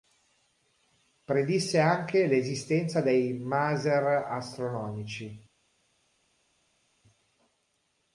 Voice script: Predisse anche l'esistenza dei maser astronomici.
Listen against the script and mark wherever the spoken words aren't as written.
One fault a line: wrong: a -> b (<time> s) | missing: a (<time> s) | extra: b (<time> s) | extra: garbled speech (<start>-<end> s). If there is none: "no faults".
no faults